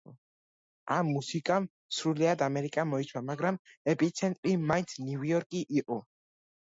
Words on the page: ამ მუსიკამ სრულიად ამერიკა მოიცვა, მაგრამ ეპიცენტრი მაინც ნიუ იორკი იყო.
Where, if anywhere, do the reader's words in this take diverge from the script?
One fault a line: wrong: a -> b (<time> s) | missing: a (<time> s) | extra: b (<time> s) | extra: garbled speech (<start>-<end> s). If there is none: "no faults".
no faults